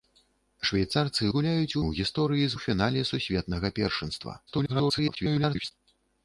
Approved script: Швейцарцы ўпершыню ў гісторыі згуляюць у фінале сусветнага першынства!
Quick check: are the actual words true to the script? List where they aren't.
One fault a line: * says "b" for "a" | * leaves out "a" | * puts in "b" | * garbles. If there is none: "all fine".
* says "згуляюць" for "ўпершыню"
* leaves out "згуляюць"
* garbles